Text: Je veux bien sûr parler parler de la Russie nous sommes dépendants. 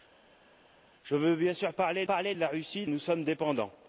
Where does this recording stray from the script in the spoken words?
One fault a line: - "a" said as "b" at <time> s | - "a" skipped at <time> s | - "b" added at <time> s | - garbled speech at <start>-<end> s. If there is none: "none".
none